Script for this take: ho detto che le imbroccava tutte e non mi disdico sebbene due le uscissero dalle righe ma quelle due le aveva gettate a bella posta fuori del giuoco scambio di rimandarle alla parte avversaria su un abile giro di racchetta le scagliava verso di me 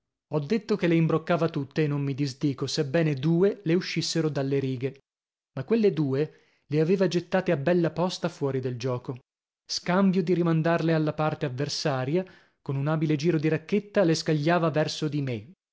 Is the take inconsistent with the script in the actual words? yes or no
yes